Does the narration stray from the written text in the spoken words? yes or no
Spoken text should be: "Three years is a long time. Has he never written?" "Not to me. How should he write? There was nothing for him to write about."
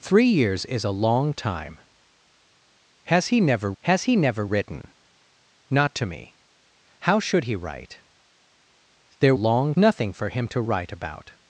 yes